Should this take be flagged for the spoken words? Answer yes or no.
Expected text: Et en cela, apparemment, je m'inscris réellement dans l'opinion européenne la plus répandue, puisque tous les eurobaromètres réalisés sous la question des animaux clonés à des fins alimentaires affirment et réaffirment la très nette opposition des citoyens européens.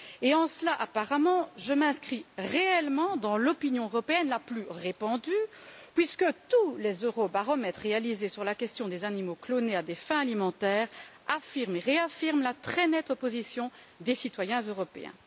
yes